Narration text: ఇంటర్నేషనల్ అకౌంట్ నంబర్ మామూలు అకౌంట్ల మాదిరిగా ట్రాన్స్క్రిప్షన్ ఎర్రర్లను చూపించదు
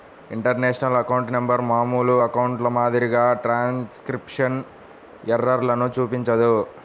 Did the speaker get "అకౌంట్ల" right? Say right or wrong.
right